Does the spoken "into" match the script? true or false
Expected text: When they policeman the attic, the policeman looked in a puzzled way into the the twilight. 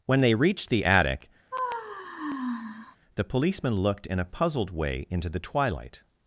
true